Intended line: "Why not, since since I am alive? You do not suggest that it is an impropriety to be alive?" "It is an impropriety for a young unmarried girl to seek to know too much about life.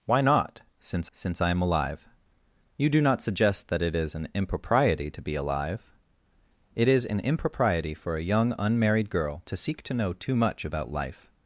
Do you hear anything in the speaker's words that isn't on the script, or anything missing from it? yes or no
no